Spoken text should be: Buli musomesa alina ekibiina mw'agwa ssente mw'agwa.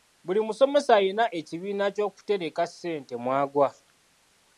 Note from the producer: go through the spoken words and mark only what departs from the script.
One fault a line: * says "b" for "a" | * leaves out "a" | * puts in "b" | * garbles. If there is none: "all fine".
* says "ky'okutereka" for "mw'agwa"